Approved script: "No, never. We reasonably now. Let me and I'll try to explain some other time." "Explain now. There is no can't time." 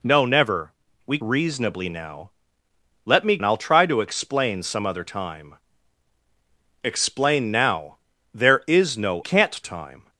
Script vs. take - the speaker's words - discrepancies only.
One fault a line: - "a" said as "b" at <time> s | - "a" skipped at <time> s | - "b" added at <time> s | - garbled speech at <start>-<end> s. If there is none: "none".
none